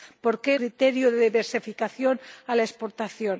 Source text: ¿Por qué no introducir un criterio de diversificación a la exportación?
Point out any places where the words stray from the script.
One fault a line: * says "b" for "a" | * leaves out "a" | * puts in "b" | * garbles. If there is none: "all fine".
* leaves out "no introducir un"